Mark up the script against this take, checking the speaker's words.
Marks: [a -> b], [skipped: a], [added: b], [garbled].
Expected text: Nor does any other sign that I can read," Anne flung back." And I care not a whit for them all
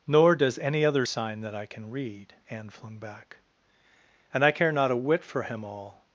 Nor does any other sign that I can read," Anne flung back." And I care not a whit for [them -> him] all